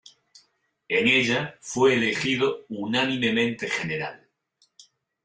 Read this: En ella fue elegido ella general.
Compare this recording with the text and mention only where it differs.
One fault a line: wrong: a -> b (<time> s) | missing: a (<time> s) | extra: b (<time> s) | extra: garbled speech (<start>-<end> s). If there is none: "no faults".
wrong: ella -> unánimemente (2.7 s)